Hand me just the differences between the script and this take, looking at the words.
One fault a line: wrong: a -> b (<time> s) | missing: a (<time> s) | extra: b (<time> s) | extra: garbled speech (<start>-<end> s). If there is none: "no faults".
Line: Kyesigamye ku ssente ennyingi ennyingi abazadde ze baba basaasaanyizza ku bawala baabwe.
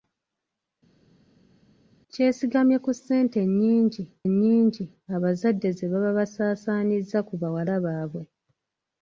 no faults